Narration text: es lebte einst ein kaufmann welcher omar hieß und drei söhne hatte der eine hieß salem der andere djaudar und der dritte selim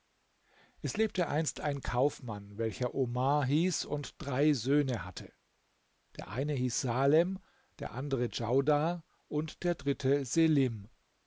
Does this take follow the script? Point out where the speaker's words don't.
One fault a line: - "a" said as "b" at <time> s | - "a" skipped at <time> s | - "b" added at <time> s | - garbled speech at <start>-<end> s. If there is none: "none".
none